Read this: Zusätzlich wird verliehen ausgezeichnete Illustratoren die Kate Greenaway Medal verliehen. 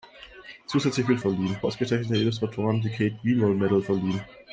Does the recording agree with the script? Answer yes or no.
yes